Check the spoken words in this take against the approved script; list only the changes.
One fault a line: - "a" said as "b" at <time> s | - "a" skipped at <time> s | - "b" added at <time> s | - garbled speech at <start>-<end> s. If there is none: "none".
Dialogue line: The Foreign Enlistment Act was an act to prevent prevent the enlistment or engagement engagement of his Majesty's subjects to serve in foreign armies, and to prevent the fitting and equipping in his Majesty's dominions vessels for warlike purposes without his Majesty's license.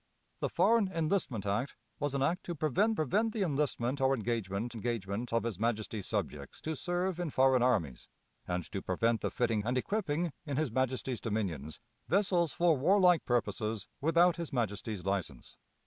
none